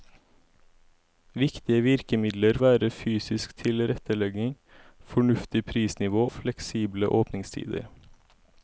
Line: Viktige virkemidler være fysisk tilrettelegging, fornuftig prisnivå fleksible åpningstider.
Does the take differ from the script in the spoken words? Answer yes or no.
no